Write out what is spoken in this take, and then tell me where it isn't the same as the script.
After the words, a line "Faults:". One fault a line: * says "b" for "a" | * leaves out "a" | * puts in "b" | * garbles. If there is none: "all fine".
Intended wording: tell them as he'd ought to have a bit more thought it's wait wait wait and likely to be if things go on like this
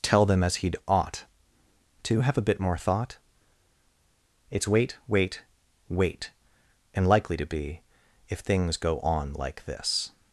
tell them as he'd ought to have a bit more thought it's wait wait wait and likely to be if things go on like this
Faults:
all fine